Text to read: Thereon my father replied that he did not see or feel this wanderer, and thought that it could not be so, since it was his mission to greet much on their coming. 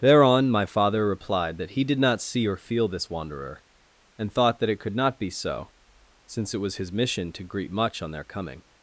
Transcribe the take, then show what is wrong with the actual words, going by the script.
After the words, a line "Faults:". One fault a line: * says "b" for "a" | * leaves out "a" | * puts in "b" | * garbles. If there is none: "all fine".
Thereon my father replied that he did not see or feel this wanderer, and thought that it could not be so, since it was his mission to greet much on their coming.
Faults:
all fine